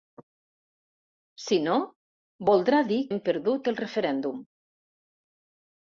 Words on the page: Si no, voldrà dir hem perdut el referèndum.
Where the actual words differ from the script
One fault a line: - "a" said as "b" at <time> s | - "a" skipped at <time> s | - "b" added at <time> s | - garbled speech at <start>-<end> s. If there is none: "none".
none